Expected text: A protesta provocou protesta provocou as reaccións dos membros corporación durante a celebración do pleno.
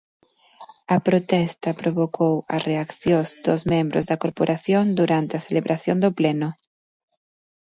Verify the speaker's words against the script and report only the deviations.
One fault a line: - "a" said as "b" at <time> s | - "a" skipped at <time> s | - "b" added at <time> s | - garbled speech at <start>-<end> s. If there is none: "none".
- "protesta provocou" skipped at 2.3 s
- "da" added at 4.1 s